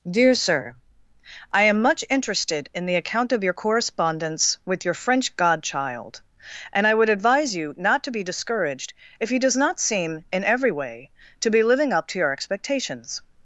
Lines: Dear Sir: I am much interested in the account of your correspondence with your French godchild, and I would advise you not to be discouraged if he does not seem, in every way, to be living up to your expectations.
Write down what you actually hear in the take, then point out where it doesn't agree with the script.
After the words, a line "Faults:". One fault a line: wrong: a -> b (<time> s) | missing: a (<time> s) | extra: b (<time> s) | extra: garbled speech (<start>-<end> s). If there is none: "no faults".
Dear Sir: I am much interested in the account of your correspondence with your French godchild, and I would advise you not to be discouraged if he does not seem, in every way, to be living up to your expectations.
Faults:
no faults